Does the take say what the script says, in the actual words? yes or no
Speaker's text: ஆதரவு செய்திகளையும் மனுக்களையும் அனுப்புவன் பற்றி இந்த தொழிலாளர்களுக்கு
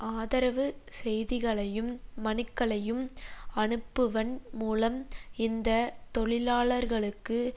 no